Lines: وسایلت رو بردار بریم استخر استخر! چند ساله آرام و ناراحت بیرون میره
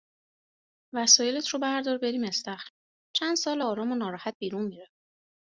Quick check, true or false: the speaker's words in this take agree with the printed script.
false